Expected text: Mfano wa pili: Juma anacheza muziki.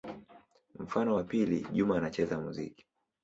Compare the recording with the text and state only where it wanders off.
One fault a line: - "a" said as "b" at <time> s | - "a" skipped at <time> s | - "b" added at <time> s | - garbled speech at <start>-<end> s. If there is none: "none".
none